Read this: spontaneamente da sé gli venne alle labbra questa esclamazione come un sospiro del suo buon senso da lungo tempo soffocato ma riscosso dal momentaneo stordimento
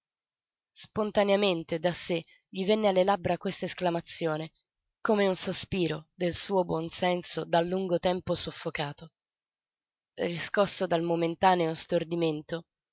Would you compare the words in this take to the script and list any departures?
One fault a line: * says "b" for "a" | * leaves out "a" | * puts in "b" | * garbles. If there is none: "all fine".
* leaves out "ma"